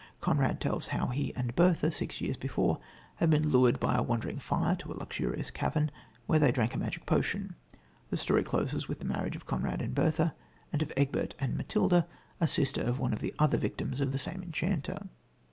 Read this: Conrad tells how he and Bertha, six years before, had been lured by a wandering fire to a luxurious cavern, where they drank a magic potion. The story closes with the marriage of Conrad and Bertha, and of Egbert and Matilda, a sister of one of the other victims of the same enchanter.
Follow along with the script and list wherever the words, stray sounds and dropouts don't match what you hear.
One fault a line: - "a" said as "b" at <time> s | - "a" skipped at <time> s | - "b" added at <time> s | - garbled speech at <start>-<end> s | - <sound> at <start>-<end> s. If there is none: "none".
none